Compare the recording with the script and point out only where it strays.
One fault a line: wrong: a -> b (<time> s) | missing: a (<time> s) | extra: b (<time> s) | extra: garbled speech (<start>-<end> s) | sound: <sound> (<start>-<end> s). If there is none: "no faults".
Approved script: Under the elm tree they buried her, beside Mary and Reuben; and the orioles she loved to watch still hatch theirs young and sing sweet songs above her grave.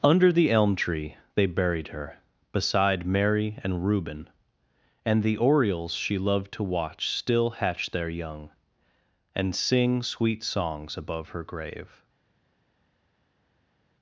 wrong: theirs -> their (7.9 s)